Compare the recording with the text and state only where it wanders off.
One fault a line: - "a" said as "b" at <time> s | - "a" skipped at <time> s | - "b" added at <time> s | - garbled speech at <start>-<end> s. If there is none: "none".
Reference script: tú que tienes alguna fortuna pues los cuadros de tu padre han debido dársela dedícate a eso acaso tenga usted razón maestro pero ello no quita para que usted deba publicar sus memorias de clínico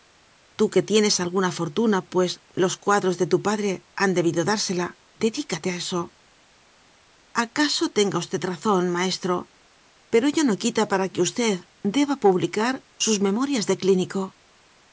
none